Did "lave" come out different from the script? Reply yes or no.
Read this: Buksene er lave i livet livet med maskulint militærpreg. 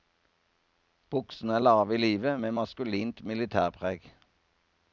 no